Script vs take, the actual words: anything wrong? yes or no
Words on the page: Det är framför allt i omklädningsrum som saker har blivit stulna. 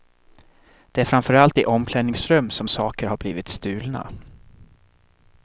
no